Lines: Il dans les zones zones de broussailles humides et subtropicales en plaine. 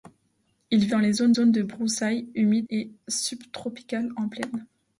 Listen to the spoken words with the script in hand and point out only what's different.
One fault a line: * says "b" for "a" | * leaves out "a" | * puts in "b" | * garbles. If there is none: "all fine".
all fine